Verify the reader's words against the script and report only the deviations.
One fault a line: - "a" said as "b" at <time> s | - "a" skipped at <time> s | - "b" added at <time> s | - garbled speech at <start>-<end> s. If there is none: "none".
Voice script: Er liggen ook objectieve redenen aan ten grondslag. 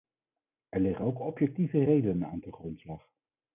none